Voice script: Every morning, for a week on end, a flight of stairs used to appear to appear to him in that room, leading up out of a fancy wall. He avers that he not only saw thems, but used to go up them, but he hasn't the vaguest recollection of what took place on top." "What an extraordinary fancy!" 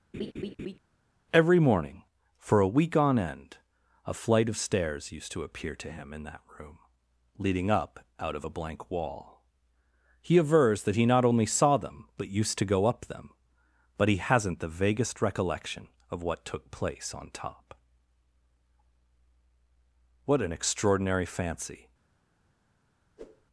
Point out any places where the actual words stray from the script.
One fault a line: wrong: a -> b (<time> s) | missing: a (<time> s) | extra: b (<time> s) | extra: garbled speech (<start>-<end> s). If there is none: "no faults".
missing: appear to (5.9 s)
wrong: fancy -> blank (8.5 s)
wrong: thems -> them (11.8 s)